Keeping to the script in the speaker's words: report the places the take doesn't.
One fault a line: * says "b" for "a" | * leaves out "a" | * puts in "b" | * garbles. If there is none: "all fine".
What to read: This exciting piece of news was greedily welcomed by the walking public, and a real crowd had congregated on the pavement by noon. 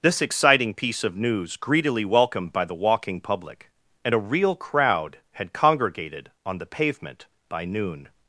* leaves out "was"